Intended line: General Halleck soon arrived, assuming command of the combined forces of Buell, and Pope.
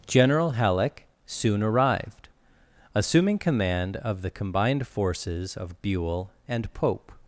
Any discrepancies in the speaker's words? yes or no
no